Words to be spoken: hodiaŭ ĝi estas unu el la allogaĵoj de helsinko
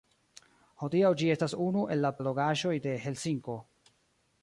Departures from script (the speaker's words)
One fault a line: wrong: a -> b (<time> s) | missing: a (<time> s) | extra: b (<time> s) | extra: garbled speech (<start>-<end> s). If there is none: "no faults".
no faults